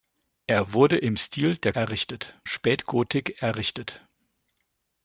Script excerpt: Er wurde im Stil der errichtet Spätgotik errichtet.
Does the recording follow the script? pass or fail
pass